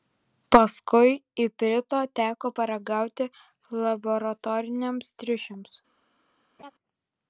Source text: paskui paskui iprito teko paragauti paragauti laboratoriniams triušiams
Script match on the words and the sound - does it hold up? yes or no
no